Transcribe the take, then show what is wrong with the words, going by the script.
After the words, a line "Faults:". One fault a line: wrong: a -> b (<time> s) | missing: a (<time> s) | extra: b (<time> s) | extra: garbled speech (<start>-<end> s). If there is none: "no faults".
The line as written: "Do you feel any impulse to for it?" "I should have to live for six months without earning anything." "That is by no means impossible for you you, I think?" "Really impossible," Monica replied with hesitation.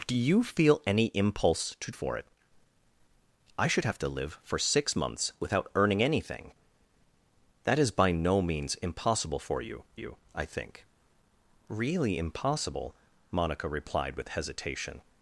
"Do you feel any impulse to for it?" "I should have to live for six months without earning anything." "That is by no means impossible for you you, I think?" "Really impossible," Monica replied with hesitation.
Faults:
no faults